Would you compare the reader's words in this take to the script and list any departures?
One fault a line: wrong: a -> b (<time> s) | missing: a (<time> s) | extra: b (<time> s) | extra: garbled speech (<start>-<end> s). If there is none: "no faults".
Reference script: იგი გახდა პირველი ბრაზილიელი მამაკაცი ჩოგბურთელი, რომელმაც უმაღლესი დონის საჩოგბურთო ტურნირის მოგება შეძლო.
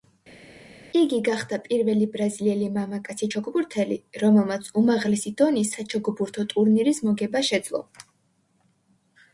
no faults